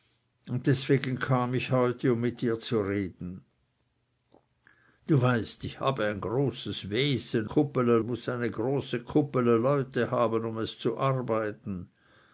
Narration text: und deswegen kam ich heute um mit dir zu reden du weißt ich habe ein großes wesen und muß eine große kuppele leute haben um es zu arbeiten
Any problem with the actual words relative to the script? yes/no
yes